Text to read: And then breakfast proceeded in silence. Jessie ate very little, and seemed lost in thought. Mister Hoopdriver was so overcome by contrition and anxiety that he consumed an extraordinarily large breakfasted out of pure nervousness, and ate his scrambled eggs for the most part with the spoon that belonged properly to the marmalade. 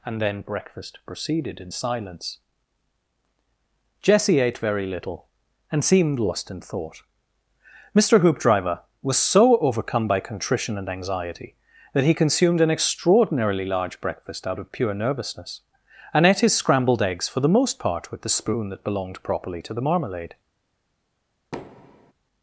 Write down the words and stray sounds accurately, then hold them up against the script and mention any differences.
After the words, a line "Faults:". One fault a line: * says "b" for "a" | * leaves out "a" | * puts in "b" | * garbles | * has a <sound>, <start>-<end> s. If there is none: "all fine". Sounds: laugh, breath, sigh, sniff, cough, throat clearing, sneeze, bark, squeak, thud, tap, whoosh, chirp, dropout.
And then breakfast proceeded in silence. Jessie ate very little, and seemed lost in thought. Mister Hoopdriver was so overcome by contrition and anxiety that he consumed an extraordinarily large breakfast out of pure nervousness, and ate his scrambled eggs for the most part with the spoon that belonged properly to the marmalade.
Faults:
* says "breakfast" for "breakfasted"
* has a thud, 21.5-22.1 s